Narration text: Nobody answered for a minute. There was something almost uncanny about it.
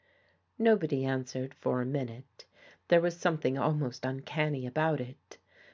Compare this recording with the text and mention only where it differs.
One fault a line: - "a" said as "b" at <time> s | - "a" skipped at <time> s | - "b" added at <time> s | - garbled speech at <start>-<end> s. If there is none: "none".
none